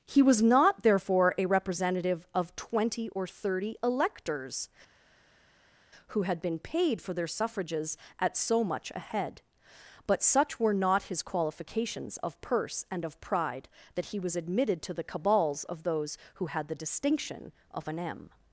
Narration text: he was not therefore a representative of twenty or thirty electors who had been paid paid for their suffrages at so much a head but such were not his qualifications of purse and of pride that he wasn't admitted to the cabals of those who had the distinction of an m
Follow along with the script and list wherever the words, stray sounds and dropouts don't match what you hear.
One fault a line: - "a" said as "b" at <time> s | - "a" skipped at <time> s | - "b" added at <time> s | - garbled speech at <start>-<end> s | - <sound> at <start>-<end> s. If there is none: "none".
- "paid" skipped at 7.0 s
- "wasn't" said as "was" at 14.2 s